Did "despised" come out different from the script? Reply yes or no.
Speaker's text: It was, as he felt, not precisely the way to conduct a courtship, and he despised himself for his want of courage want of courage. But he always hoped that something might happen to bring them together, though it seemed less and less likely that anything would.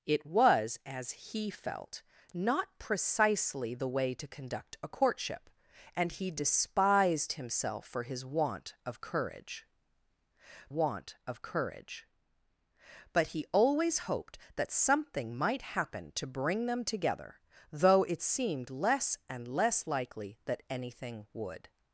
no